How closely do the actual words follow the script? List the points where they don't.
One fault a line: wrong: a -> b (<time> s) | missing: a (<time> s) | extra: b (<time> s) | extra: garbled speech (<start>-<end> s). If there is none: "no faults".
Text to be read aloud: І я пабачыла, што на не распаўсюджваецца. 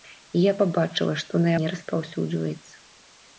no faults